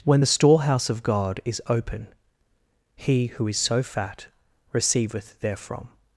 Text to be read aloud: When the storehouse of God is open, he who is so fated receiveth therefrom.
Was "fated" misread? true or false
true